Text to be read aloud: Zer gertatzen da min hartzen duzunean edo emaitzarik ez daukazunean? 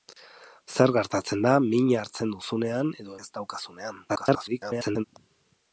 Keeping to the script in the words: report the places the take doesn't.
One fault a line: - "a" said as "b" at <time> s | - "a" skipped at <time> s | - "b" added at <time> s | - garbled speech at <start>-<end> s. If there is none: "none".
- "emaitzarik" skipped at 3.2 s
- garbled speech at 4.1-5.0 s